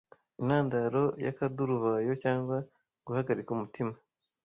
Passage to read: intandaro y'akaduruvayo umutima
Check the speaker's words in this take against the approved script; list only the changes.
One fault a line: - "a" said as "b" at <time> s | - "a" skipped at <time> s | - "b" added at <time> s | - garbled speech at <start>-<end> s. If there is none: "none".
- "cyangwa guhagarika" added at 2.2 s